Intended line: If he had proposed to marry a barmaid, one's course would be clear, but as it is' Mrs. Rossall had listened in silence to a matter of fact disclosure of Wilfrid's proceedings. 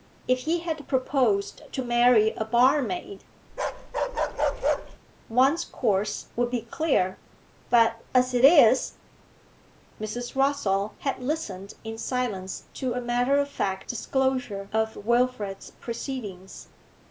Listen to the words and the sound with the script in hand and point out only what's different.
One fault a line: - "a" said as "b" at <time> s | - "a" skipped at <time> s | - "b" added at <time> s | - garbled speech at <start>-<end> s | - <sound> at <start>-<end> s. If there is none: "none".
- bark at 3.5-5.0 s